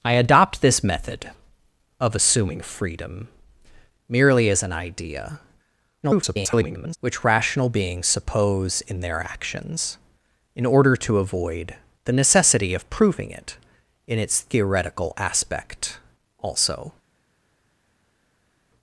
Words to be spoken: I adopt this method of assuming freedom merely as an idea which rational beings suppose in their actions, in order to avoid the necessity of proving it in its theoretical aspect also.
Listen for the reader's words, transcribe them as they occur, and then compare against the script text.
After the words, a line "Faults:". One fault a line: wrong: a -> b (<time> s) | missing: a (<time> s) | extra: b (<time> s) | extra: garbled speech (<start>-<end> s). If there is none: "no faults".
I adopt this method of assuming freedom merely as an idea [garbled] which rational beings suppose in their actions, in order to avoid the necessity of proving it in its theoretical aspect also.
Faults:
extra: garbled speech (6.0-7.0 s)